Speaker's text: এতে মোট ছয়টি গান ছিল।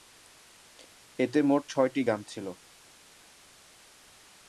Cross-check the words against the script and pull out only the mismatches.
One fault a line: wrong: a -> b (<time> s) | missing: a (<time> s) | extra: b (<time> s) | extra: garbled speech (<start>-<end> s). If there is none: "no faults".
no faults